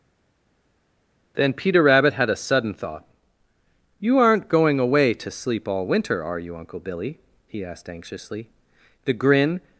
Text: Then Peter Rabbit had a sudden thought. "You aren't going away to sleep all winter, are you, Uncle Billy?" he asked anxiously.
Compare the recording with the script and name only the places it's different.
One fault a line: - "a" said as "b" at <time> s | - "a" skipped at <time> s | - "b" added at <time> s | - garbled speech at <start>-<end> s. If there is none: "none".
- "The grin" added at 9.0 s